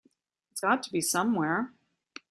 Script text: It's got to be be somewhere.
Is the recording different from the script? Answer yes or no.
yes